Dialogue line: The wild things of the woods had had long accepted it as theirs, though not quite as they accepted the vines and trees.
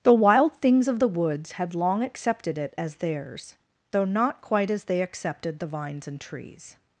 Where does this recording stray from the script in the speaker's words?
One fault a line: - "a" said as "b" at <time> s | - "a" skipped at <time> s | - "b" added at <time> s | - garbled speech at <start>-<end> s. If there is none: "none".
- "had" skipped at 1.8 s